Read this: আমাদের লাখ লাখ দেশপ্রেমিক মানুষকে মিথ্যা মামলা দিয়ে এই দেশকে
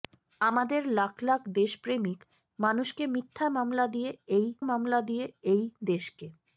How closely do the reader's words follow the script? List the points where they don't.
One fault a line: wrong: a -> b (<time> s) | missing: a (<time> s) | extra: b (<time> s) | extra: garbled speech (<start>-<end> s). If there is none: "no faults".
extra: মামলা দিয়ে এই (4.6 s)